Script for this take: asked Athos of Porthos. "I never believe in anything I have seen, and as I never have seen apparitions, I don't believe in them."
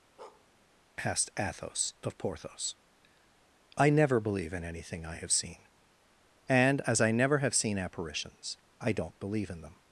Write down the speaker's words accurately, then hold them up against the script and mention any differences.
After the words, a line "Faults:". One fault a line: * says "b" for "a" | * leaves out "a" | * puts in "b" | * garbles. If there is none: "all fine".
asked Athos of Porthos. "I never believe in anything I have seen, and as I never have seen apparitions, I don't believe in them."
Faults:
all fine